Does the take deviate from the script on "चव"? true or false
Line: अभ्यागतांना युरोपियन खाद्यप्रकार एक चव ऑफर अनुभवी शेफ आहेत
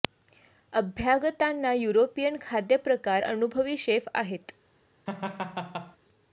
true